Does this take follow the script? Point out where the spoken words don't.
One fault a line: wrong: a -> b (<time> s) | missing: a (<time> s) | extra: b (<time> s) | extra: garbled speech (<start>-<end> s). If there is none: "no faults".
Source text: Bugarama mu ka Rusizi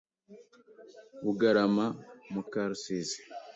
no faults